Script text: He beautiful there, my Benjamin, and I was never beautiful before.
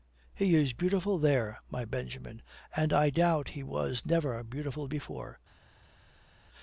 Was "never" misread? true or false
false